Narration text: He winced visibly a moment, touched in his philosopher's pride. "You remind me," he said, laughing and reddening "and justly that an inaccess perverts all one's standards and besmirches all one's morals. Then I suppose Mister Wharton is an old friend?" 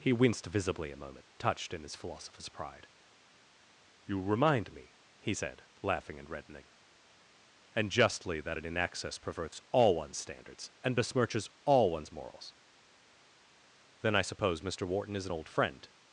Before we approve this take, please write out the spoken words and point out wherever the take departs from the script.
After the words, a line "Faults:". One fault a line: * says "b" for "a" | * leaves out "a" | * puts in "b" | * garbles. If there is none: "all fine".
He winced visibly a moment, touched in his philosopher's pride. "You remind me," he said, laughing and reddening "and justly that an inaccess perverts all one's standards and besmirches all one's morals. Then I suppose Mister Wharton is an old friend?"
Faults:
all fine